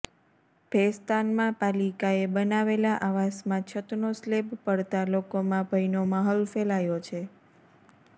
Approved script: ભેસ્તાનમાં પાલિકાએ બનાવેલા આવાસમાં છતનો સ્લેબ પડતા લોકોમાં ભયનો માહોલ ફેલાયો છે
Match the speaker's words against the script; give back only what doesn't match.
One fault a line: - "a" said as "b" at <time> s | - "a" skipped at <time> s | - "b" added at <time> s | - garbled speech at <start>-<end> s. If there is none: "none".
none